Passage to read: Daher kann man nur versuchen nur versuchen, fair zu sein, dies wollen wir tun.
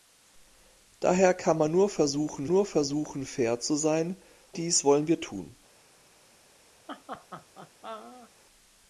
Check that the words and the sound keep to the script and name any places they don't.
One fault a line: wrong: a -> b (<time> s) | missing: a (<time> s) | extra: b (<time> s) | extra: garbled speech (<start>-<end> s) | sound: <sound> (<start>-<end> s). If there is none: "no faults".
sound: laugh (6.9-8.3 s)